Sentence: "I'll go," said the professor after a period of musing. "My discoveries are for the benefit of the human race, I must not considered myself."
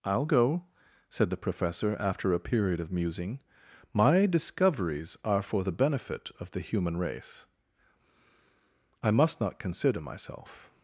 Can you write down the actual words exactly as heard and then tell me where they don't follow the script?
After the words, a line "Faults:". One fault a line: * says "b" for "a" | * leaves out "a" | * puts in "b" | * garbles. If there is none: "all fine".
"I'll go," said the professor after a period of musing. "My discoveries are for the benefit of the human race, I must not consider myself."
Faults:
* says "consider" for "considered"